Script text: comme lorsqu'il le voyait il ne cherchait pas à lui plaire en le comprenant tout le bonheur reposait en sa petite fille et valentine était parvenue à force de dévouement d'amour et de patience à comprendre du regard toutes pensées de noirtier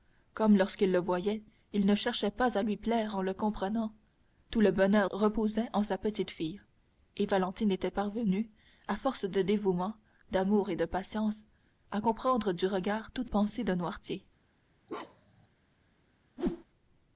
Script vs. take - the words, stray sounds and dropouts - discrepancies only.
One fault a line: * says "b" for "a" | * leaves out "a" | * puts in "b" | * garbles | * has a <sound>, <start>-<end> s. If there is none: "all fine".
* has a bark, 14.9-15.5 s
* has a whoosh, 16.4-16.6 s